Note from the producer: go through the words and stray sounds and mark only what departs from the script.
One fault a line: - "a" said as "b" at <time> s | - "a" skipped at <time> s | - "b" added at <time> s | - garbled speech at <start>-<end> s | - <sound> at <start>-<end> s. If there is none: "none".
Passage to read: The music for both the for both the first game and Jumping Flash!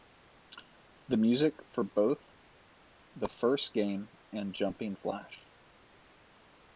- "for both the" skipped at 3.3 s